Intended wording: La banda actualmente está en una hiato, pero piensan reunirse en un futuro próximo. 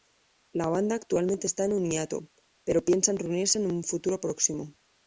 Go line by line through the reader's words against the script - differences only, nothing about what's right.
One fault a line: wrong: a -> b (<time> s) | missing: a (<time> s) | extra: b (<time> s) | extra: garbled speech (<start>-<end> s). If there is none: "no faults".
wrong: una -> un (1.7 s)